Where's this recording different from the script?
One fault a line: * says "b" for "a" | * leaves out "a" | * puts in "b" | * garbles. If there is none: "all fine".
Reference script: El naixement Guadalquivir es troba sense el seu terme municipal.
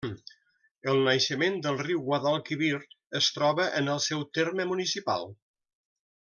* puts in "del riu"
* says "en" for "sense"